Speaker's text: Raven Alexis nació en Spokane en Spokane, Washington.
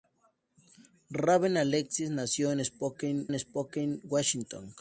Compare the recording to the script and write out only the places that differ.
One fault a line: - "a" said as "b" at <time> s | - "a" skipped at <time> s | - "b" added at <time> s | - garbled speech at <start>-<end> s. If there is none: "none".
none